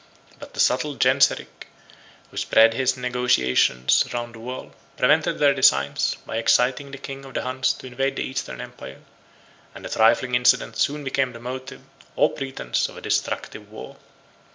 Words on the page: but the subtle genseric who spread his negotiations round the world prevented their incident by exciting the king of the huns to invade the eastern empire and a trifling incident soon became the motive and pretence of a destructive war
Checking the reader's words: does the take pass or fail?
fail